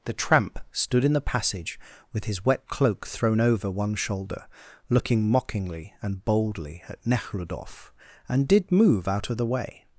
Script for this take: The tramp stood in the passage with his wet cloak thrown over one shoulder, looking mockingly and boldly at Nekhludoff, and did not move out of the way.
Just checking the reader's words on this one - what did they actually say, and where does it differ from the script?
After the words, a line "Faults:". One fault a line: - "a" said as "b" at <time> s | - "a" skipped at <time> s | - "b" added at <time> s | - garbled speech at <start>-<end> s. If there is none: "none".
The tramp stood in the passage with his wet cloak thrown over one shoulder, looking mockingly and boldly at Nekhludoff, and did move out of the way.
Faults:
- "not" skipped at 8.7 s